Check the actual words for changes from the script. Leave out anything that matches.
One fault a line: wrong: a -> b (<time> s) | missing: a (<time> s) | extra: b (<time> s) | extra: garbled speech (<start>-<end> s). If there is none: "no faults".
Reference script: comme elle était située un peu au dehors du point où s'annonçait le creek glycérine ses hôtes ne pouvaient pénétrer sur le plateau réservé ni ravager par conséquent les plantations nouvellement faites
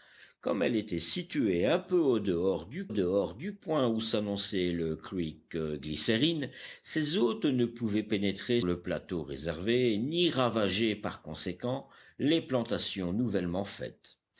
extra: dehors du (2.9 s)
missing: sur (8.6 s)